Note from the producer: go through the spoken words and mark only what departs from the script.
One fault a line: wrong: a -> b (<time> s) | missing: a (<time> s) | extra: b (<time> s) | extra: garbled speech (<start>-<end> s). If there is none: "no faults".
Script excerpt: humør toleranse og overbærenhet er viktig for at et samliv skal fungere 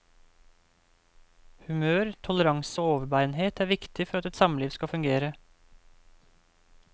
no faults